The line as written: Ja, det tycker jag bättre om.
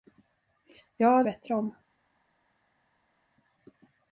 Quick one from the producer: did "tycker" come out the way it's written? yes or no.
no